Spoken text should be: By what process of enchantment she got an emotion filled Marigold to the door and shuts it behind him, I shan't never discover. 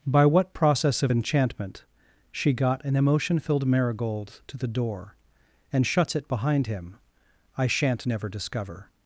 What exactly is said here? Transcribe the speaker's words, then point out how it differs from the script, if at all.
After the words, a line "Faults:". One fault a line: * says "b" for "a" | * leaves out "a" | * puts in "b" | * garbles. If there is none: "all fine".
By what process of enchantment she got an emotion filled Marigold to the door and shuts it behind him, I shan't never discover.
Faults:
all fine